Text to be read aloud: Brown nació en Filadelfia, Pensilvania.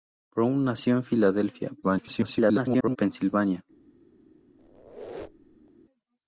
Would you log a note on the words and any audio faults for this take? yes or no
yes